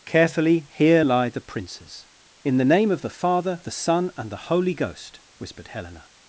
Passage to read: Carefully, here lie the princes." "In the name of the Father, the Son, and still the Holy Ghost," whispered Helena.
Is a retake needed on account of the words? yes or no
yes